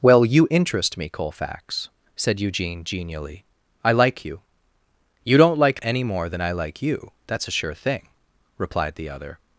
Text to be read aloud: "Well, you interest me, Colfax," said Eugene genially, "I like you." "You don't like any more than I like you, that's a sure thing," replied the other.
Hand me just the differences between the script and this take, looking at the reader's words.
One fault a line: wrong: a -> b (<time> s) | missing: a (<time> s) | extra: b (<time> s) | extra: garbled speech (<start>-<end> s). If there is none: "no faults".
no faults